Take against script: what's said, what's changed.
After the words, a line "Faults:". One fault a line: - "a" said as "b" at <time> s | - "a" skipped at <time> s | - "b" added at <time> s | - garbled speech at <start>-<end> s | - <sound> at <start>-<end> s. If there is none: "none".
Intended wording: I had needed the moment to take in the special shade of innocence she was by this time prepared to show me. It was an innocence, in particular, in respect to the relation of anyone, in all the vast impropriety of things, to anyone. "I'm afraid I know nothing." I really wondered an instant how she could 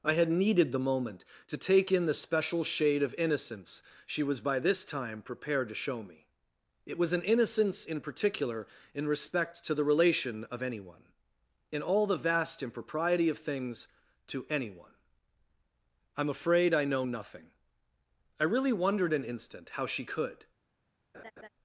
I had needed the moment to take in the special shade of innocence she was by this time prepared to show me. It was an innocence, in particular, in respect to the relation of anyone, in all the vast impropriety of things, to anyone. "I'm afraid I know nothing." I really wondered an instant how she could
Faults:
- laugh at 21.1-21.5 s